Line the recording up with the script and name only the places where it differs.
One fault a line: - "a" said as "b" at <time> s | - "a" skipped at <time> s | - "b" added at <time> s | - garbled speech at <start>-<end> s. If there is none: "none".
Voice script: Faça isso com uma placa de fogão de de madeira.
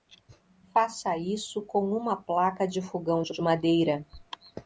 none